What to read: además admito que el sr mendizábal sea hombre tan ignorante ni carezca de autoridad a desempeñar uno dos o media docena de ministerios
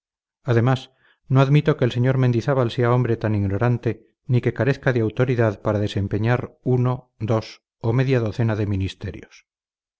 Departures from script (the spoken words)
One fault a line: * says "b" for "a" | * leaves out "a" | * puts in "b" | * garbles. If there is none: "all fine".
* puts in "no"
* puts in "que"
* says "para" for "a"